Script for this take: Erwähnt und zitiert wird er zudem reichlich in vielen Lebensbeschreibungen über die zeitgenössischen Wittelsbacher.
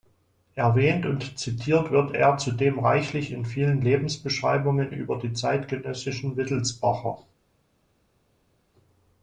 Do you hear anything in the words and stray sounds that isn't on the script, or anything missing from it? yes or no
no